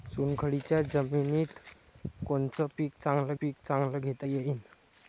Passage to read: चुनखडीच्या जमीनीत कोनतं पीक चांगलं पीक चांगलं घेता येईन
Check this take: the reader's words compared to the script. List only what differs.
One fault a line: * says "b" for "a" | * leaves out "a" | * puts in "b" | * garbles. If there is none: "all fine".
all fine